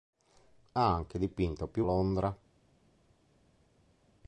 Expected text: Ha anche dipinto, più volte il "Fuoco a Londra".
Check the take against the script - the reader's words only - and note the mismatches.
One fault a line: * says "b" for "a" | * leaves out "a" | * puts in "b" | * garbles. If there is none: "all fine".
* leaves out "volte il Fuoco"